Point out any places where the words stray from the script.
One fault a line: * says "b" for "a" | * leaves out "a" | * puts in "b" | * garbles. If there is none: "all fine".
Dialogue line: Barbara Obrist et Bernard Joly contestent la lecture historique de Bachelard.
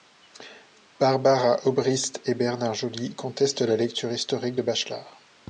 all fine